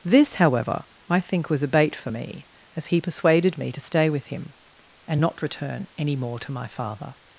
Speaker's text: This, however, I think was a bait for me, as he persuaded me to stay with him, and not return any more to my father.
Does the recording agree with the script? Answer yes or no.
yes